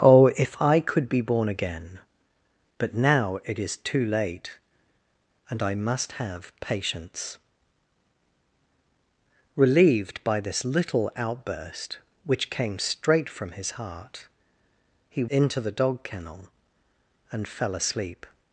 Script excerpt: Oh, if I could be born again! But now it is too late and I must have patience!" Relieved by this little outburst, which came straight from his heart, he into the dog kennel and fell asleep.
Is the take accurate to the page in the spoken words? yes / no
yes